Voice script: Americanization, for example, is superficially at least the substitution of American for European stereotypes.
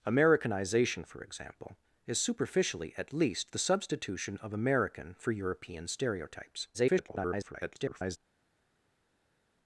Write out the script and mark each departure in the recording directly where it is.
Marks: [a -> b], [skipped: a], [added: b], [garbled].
Americanization, for example, is superficially at least the substitution of American for European stereotypes. [garbled]